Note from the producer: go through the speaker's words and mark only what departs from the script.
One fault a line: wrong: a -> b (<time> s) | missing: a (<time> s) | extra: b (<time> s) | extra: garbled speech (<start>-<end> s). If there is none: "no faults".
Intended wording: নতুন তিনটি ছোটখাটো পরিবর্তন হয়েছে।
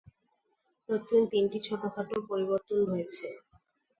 no faults